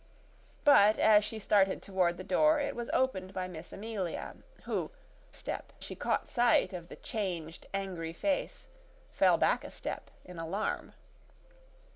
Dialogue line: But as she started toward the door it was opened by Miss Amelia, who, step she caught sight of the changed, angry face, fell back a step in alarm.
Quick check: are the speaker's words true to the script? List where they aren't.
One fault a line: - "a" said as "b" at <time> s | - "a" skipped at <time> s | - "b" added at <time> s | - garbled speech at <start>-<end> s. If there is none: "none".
none